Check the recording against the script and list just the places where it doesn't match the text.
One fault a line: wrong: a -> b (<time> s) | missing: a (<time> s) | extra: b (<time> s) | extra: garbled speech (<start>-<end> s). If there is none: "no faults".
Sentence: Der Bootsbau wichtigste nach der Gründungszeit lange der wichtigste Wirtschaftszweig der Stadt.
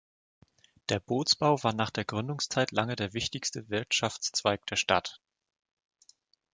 wrong: wichtigste -> war (1.6 s)